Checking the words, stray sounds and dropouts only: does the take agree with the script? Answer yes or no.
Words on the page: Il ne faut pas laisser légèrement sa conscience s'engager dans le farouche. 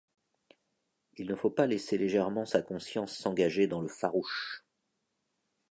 yes